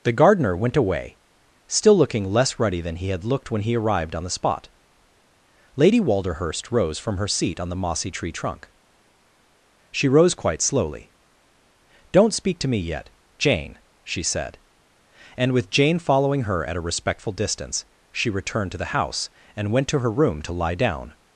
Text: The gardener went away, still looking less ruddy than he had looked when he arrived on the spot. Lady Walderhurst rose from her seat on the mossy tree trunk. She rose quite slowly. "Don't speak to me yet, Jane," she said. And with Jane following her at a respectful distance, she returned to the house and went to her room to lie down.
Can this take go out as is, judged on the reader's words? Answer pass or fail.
pass